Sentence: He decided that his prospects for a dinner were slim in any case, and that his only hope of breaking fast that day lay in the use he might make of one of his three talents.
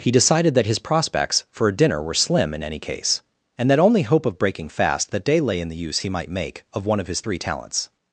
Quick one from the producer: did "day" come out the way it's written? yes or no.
yes